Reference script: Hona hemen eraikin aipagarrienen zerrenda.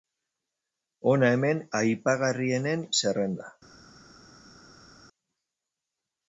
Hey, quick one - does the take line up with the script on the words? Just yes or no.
no